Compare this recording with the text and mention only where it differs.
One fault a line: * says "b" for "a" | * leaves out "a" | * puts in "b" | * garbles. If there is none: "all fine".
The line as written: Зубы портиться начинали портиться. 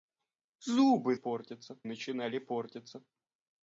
all fine